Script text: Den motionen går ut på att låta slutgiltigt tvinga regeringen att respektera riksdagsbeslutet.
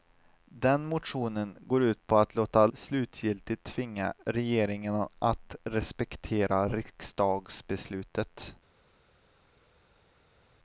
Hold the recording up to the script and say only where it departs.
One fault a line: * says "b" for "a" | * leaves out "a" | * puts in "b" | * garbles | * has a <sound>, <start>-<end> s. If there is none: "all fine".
all fine